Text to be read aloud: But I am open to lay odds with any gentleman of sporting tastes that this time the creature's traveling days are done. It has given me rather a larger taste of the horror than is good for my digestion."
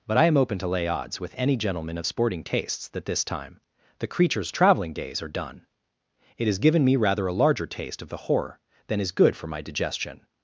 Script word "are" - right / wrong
right